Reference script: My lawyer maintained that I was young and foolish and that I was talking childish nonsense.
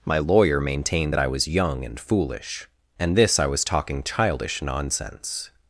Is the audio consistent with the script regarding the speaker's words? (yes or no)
no